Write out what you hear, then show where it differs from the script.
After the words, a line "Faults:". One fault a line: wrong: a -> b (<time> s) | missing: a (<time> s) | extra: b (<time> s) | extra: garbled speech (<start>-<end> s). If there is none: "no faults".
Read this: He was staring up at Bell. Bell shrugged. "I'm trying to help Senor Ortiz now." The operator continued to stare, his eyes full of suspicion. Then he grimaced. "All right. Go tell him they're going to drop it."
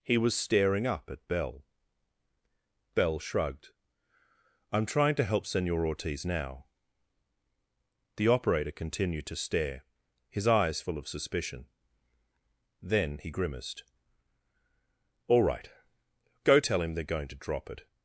He was staring up at Bell. Bell shrugged. "I'm trying to help Senor Ortiz now." The operator continued to stare, his eyes full of suspicion. Then he grimaced. "All right. Go tell him they're going to drop it."
Faults:
no faults